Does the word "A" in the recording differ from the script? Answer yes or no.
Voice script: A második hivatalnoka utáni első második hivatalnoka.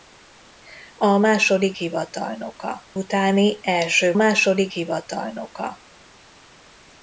no